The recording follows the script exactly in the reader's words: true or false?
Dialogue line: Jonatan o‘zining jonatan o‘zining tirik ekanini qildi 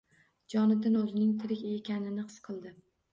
false